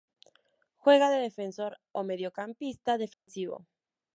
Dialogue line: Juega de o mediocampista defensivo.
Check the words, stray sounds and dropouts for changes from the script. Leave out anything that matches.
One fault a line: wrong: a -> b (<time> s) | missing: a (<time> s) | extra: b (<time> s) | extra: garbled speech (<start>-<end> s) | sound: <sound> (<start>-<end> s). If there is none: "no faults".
extra: defensor (1.2 s)
sound: dropout (3.1-3.3 s)